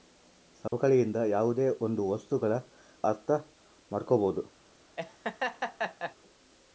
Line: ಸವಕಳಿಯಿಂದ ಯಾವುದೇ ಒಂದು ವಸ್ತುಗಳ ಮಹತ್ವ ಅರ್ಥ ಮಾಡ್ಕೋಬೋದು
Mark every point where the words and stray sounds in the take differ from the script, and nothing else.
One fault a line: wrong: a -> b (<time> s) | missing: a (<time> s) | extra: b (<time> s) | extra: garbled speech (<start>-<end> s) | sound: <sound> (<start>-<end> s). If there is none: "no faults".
sound: dropout (0.7-0.7 s)
missing: ಮಹತ್ವ (2.5 s)
sound: laugh (5.0-6.2 s)